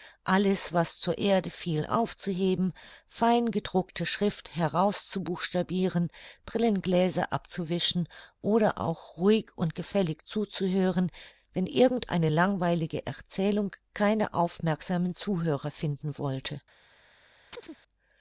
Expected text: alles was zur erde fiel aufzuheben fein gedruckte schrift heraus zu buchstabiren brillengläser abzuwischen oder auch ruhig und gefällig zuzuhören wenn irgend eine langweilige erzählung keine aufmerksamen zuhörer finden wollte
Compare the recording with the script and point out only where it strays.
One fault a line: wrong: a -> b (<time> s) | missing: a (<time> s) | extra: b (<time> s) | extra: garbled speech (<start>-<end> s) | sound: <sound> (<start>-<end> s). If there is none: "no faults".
sound: chirp (17.5-17.8 s)